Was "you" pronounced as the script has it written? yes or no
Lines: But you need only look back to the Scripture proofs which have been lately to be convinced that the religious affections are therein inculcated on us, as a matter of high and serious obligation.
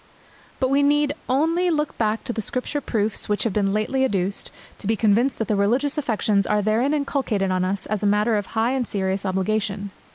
no